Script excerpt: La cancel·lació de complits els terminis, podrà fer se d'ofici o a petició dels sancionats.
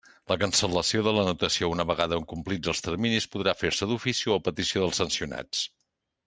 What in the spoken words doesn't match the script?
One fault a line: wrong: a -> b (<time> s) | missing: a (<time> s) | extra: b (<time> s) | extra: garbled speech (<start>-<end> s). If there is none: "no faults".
extra: l'anotació una vegada (1.2 s)